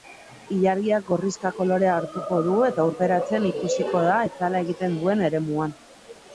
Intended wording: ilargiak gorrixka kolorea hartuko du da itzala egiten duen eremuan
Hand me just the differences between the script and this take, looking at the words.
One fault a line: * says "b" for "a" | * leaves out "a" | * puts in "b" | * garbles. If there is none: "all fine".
* puts in "eta urperatzen ikusiko"